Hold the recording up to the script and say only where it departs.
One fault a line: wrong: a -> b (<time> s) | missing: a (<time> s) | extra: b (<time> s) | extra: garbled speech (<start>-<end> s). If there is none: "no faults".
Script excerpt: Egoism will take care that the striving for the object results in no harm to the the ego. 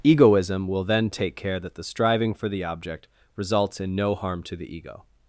extra: then (0.8 s)
missing: the (4.7 s)